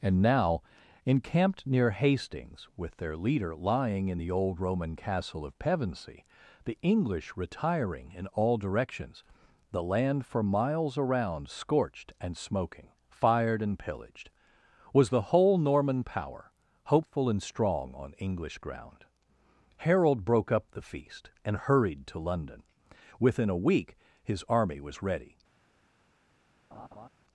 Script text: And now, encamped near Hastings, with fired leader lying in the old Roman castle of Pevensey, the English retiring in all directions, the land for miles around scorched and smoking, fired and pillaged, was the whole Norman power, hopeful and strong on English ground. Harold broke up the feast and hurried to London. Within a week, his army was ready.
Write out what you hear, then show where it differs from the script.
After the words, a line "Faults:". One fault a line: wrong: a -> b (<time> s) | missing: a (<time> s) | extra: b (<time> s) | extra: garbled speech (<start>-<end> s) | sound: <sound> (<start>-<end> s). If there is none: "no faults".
And now, encamped near Hastings, with their leader lying in the old Roman castle of Pevensey, the English retiring in all directions, the land for miles around scorched and smoking, fired and pillaged, was the whole Norman power, hopeful and strong on English ground. Harold broke up the feast and hurried to London. Within a week, his army was ready.
Faults:
wrong: fired -> their (3.0 s)
sound: laugh (26.7-27.1 s)